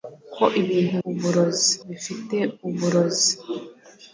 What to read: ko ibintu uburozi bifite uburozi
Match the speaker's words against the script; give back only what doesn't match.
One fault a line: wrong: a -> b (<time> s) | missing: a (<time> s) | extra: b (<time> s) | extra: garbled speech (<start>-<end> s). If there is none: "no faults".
no faults